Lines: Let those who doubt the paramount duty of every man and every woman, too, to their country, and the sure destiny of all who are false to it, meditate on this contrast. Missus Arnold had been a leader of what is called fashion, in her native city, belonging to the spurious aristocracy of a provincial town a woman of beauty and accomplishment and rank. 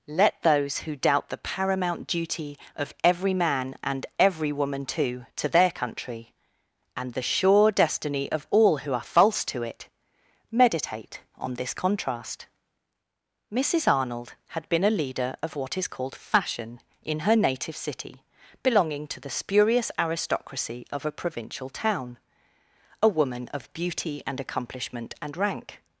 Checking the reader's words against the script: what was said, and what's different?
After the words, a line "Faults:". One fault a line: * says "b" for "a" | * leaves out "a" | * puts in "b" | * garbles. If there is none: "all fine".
Let those who doubt the paramount duty of every man and every woman, too, to their country, and the sure destiny of all who are false to it, meditate on this contrast. Missus Arnold had been a leader of what is called fashion, in her native city, belonging to the spurious aristocracy of a provincial town a woman of beauty and accomplishment and rank.
Faults:
all fine